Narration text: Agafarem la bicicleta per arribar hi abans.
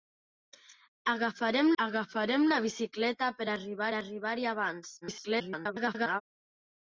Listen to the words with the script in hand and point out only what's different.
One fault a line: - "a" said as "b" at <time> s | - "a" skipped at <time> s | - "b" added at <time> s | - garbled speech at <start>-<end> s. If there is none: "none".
- "agafarem" added at 1.8 s
- "arribar" added at 4.0 s
- garbled speech at 5.0-6.2 s